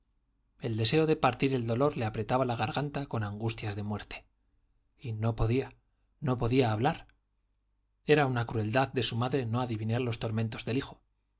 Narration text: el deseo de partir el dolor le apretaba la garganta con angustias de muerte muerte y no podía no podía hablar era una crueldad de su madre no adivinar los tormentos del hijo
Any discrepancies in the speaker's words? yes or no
yes